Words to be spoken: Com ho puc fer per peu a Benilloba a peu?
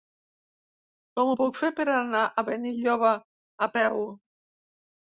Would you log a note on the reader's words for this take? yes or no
yes